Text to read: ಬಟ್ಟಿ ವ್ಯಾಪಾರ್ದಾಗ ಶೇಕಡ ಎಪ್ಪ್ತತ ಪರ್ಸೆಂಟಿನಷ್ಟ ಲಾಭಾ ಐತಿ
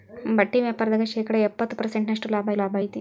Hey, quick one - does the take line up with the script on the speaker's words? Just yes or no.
no